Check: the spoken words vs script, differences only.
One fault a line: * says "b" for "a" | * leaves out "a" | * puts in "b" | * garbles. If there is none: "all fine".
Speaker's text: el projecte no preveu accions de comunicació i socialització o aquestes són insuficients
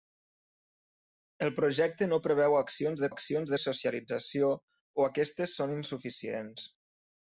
* says "accions" for "comunicació"